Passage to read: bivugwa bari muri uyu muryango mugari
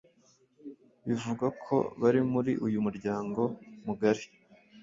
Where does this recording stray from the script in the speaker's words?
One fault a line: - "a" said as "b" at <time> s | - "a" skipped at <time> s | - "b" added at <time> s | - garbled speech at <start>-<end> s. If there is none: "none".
- "ko" added at 1.6 s